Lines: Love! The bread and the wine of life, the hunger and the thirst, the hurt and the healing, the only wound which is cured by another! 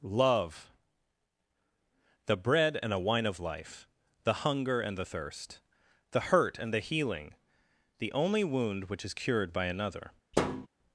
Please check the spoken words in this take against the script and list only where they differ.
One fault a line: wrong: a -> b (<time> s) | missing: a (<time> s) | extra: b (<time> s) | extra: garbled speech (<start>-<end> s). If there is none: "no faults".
wrong: the -> a (2.9 s)